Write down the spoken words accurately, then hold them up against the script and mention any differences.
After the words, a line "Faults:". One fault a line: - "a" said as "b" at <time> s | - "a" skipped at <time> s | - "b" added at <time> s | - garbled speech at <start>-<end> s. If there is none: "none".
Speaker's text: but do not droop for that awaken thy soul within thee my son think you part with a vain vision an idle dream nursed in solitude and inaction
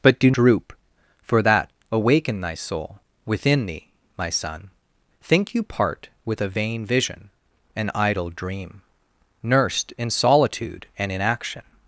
but do droop for that awaken thy soul within thee my son think you part with a vain vision an idle dream nursed in solitude and inaction
Faults:
- "not" skipped at 0.3 s